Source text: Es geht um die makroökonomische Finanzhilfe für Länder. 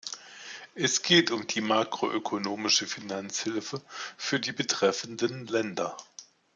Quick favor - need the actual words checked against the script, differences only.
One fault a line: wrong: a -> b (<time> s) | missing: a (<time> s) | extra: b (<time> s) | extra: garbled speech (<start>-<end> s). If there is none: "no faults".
extra: die betreffenden (4.4 s)